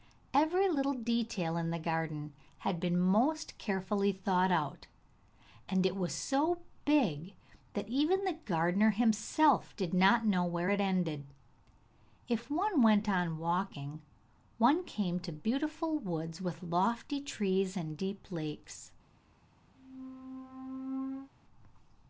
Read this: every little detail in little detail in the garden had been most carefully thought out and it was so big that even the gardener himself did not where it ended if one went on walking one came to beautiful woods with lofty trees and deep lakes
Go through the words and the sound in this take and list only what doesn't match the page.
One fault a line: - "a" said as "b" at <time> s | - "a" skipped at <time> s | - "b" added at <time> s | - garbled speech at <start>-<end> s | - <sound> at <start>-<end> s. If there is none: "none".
- "little detail in" skipped at 1.7 s
- "know" added at 10.2 s
- squeak at 19.7-21.3 s